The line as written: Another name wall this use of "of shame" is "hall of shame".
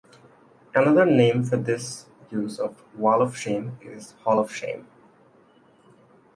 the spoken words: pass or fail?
fail